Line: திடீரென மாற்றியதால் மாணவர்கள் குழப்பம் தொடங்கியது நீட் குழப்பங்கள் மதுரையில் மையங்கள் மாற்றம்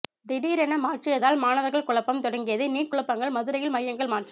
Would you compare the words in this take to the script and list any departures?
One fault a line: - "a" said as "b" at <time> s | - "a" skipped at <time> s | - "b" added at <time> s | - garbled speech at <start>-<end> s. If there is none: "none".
none